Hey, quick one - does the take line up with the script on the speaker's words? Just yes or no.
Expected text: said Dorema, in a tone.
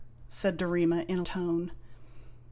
yes